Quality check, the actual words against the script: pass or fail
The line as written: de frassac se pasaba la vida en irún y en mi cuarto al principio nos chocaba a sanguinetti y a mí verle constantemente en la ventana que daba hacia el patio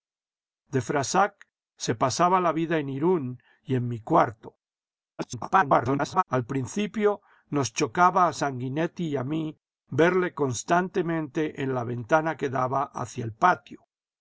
fail